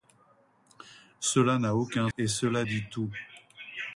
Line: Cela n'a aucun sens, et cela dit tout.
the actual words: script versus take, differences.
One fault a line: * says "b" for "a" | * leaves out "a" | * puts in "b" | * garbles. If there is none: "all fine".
* leaves out "sens"